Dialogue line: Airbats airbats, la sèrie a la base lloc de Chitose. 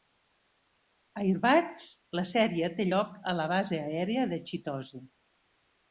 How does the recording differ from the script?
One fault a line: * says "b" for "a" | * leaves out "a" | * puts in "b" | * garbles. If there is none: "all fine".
* leaves out "airbats"
* puts in "té lloc"
* says "aèria" for "lloc"